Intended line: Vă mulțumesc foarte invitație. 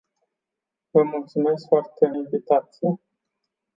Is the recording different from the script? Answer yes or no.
no